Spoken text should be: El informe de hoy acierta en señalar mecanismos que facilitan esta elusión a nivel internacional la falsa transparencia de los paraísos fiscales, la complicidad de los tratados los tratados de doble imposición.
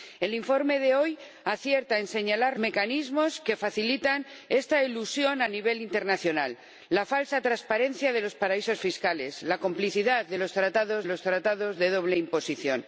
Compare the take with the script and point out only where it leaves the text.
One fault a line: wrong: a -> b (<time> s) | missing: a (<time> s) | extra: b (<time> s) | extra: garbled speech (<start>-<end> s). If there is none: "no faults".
no faults